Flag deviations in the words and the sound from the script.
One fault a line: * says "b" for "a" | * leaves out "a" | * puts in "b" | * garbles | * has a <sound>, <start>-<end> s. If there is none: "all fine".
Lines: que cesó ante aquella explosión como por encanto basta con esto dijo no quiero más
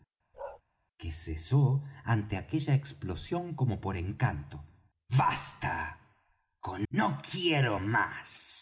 * has a bark, 0.3-0.6 s
* leaves out "esto dijo"